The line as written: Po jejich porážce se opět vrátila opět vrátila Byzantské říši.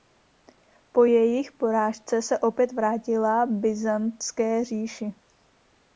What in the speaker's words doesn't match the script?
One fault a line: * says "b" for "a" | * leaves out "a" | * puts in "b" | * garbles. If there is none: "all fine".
* leaves out "opět vrátila"